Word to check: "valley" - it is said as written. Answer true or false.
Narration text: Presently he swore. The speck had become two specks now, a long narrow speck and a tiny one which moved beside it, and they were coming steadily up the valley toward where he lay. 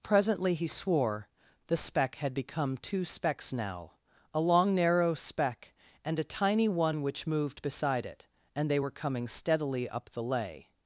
false